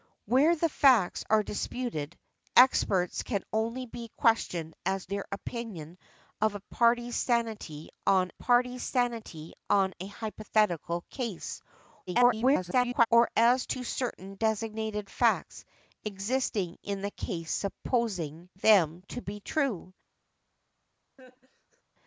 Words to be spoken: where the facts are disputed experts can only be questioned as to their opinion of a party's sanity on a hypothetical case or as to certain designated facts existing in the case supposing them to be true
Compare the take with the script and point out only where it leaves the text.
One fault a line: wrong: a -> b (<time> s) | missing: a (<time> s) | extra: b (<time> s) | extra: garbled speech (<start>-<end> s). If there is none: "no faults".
missing: to (5.0 s)
extra: party's sanity on (8.4 s)
extra: garbled speech (12.1-13.1 s)